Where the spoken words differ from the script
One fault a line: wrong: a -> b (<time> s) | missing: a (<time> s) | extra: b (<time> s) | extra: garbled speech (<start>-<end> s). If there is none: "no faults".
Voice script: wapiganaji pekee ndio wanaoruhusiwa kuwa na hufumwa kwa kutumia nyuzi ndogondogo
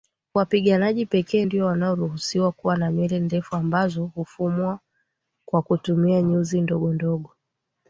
extra: nywele ndefu ambazo (2.9 s)